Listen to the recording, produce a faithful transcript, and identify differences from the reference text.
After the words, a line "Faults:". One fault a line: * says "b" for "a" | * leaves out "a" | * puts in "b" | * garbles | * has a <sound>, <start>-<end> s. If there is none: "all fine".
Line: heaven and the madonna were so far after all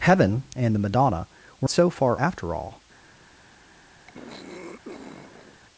heaven and the madonna were so far after all
Faults:
* has a throat clearing, 4.1-5.6 s